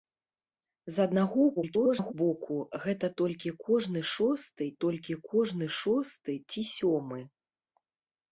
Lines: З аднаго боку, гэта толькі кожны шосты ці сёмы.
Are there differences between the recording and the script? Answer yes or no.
yes